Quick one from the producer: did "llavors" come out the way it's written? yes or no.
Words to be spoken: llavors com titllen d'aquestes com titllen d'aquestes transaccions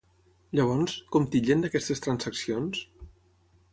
yes